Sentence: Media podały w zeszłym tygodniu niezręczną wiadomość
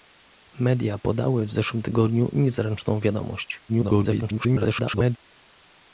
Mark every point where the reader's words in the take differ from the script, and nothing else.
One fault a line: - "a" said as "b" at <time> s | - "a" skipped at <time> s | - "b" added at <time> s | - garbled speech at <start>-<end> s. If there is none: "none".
- garbled speech at 3.7-5.2 s